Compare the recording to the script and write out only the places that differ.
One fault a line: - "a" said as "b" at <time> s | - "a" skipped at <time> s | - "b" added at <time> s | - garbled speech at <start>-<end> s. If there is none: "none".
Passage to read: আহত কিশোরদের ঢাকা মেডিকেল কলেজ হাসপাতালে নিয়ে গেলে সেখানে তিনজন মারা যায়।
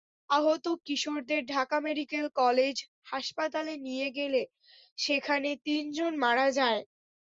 none